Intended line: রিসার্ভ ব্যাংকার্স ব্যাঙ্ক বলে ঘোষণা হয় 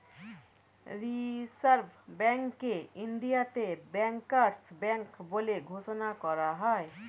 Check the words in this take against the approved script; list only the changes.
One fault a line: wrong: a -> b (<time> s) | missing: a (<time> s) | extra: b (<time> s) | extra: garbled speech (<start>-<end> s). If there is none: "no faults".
extra: ব্যাঙ্ককে ইন্ডিয়াতে (2.2 s)
extra: করা (6.2 s)